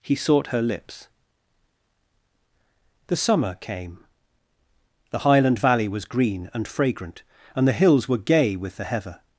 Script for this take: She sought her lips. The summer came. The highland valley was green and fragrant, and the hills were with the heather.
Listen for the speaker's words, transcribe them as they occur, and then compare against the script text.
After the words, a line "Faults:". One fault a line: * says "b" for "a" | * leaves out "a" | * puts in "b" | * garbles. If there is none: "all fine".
He sought her lips. The summer came. The highland valley was green and fragrant, and the hills were gay with the heather.
Faults:
* says "He" for "She"
* puts in "gay"